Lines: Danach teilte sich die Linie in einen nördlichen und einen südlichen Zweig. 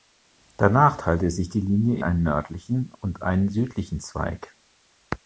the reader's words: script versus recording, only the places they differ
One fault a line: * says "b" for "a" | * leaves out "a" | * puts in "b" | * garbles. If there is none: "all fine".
* leaves out "in"